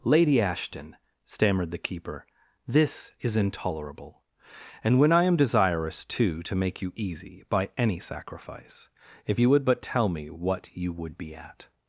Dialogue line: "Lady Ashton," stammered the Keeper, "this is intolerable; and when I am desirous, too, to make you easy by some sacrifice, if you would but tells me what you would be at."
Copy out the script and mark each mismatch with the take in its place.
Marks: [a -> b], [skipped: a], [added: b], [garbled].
"Lady Ashton," stammered the Keeper, "this is intolerable; and when I am desirous, too, to make you easy by [some -> any] sacrifice, if you would but [tells -> tell] me what you would be at."